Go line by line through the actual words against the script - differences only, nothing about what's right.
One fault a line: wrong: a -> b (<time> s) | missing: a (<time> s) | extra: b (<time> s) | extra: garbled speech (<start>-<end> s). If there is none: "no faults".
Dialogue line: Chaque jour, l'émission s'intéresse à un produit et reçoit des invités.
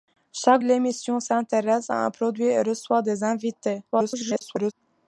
missing: jour (0.6 s)
extra: garbled speech (3.9-4.7 s)